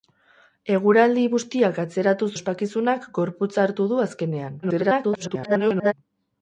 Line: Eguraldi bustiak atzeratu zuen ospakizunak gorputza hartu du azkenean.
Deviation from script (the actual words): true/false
true